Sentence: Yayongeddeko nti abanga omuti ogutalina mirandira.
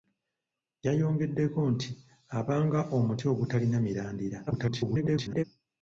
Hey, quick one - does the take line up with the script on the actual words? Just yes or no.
no